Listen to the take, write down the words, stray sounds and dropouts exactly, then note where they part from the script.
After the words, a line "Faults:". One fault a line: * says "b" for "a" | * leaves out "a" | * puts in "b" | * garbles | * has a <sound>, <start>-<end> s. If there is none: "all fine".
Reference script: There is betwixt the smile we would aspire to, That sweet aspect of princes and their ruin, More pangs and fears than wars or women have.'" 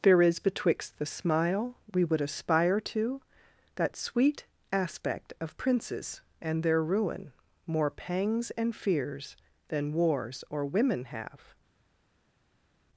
There is betwixt the smile we would aspire to, That sweet aspect of princes and their ruin, More pangs and fears than wars or women have.'"
Faults:
all fine